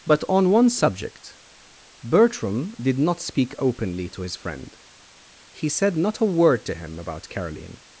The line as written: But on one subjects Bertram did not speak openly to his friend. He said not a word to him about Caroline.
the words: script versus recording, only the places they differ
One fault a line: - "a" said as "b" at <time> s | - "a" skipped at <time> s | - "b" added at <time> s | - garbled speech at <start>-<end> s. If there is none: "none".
- "subjects" said as "subject" at 0.7 s